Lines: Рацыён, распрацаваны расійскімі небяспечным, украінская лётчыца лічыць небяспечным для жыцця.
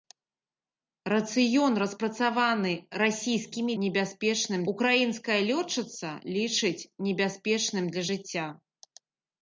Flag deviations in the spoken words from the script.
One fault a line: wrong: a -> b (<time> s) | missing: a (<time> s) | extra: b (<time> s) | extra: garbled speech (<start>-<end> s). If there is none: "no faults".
no faults